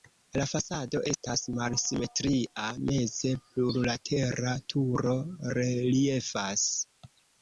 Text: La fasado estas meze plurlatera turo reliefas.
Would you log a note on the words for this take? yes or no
yes